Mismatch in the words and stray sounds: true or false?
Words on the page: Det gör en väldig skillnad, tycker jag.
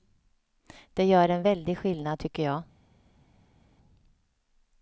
false